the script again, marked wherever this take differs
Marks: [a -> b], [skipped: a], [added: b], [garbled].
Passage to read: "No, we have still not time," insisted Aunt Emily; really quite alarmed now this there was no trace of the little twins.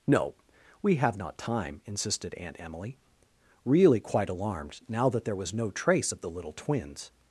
"No, we have [skipped: still] not time," insisted Aunt Emily; really quite alarmed now [this -> that] there was no trace of the little twins.